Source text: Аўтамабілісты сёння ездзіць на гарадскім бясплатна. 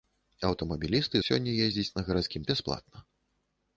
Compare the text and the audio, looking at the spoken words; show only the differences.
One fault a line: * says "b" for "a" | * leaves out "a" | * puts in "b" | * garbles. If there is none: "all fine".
all fine